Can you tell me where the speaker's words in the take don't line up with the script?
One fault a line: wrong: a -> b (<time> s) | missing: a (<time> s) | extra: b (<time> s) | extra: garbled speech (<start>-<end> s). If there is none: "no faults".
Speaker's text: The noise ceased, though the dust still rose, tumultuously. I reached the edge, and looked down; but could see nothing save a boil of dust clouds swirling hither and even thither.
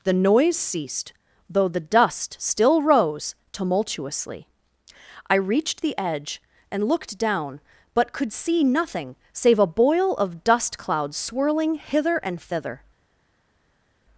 missing: even (12.4 s)